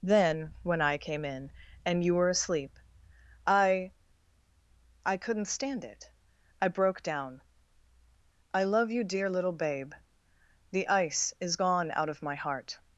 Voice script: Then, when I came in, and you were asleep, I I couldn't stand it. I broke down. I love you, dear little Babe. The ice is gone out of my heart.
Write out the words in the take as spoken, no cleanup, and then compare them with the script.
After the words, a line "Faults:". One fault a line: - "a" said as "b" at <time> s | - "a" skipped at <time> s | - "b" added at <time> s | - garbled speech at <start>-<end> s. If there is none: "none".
Then, when I came in, and you were asleep, I I couldn't stand it. I broke down. I love you, dear little Babe. The ice is gone out of my heart.
Faults:
none